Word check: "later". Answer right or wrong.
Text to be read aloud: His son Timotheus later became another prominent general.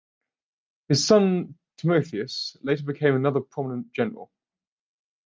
right